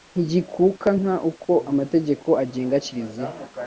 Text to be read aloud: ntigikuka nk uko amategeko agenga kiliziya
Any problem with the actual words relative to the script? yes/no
no